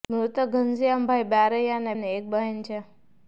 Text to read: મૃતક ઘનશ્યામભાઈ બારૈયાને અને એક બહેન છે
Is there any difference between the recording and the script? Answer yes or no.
no